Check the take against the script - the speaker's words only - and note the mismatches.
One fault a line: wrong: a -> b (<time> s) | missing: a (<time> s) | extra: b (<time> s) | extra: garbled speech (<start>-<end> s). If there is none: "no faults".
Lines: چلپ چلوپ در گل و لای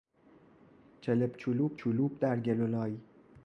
extra: چلوپ (1.7 s)